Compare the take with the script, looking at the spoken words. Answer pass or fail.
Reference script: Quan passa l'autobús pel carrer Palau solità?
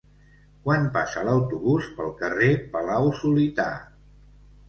pass